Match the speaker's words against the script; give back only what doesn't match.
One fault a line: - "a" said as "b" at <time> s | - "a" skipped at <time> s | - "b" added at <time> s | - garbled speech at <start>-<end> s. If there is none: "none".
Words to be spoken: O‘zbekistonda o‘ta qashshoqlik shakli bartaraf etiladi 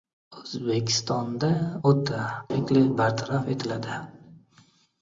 - "qashshoqlik" skipped at 2.2 s